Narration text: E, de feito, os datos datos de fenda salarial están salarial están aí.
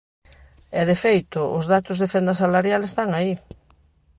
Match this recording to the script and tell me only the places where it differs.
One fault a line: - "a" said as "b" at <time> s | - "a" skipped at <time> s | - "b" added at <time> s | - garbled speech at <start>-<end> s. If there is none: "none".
- "datos" skipped at 2.0 s
- "salarial están" skipped at 3.1 s